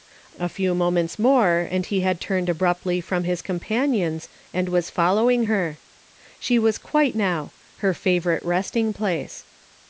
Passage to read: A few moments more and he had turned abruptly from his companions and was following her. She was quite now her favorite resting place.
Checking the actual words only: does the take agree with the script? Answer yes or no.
yes